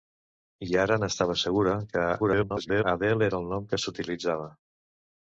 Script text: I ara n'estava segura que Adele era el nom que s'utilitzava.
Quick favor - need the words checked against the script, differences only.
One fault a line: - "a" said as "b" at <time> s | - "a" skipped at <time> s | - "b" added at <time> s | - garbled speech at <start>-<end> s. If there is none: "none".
- garbled speech at 2.2-2.8 s